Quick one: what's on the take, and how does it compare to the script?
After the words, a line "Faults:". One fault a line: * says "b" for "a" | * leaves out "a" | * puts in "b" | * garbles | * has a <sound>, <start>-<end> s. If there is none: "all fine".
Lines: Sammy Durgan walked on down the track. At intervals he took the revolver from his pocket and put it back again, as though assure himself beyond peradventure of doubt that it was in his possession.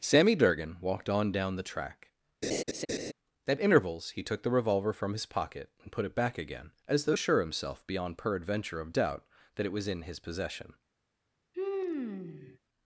Sammy Durgan walked on down the track. At intervals he took the revolver from his pocket and put it back again, as though assure himself beyond peradventure of doubt that it was in his possession.
Faults:
* has a laugh, 2.4-3.1 s
* has a sigh, 11.5-12.6 s